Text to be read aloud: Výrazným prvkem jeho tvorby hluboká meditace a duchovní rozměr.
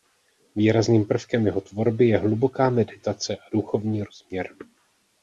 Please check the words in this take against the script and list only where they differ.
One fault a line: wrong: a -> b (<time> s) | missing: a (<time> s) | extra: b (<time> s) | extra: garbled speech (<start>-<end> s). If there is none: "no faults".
extra: je (2.1 s)